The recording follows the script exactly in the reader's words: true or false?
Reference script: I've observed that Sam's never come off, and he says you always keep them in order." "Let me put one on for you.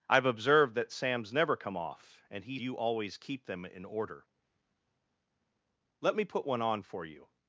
false